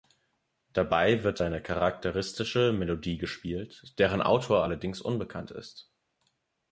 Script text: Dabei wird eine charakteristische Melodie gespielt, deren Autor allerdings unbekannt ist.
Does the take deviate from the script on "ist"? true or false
false